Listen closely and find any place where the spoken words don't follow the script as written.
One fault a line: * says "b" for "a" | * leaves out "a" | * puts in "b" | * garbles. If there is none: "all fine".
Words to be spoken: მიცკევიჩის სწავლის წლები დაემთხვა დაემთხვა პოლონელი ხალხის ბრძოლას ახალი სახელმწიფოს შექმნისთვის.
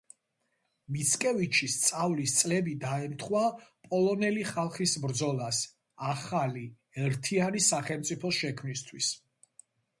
* leaves out "დაემთხვა"
* puts in "ერთიანი"